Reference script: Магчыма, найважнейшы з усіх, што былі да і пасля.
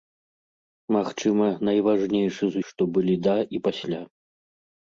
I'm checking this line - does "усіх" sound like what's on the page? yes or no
no